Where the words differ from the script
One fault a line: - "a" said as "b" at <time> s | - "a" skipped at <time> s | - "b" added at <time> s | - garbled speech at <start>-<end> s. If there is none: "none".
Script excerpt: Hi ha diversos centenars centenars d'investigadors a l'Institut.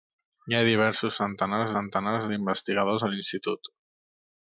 none